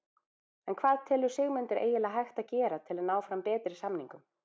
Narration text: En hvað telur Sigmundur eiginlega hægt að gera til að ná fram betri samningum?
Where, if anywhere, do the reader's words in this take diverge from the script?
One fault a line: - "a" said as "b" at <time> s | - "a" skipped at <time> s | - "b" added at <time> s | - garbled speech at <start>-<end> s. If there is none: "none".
none